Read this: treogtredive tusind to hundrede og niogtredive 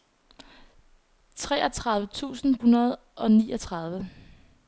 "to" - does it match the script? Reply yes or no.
no